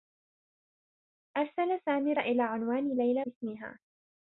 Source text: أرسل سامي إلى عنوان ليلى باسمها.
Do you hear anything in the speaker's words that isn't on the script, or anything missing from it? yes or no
no